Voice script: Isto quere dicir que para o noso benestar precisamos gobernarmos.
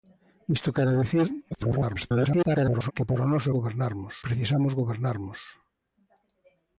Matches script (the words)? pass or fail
fail